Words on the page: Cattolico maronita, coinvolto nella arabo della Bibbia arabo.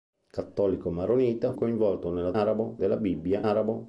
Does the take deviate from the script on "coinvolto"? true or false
false